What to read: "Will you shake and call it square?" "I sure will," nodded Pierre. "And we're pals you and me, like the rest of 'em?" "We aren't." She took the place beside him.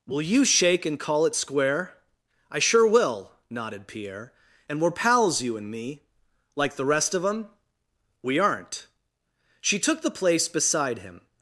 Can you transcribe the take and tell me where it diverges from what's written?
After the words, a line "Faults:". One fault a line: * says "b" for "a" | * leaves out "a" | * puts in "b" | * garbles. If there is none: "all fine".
"Will you shake and call it square?" "I sure will," nodded Pierre. "And we're pals you and me, like the rest of 'em?" "We aren't." She took the place beside him.
Faults:
all fine